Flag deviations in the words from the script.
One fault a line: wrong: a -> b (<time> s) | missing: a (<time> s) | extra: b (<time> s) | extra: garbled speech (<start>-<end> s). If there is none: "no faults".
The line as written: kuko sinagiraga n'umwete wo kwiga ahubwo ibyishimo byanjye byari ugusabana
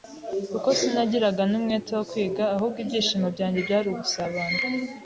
no faults